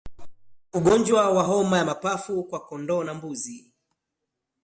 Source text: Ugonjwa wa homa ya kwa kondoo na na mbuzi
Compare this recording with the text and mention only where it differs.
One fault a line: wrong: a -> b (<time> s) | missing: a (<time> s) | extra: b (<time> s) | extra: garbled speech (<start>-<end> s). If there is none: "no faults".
extra: mapafu (1.9 s)
missing: na (3.1 s)